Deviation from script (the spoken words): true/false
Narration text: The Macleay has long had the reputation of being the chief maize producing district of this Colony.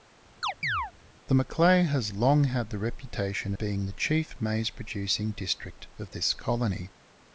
true